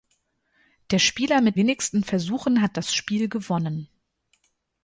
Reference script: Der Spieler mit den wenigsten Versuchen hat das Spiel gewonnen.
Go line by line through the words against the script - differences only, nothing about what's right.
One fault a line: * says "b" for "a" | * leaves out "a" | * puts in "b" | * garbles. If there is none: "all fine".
* leaves out "den"